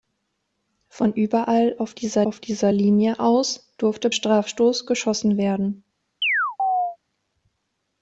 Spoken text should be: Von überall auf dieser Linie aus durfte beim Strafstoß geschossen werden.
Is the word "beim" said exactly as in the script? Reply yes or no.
no